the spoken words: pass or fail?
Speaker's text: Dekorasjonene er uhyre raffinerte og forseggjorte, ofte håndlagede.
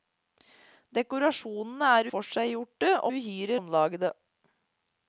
fail